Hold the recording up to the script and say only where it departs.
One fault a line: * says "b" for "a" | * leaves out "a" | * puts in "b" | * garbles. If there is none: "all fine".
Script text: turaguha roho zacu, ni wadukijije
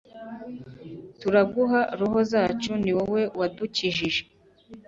* puts in "wowe"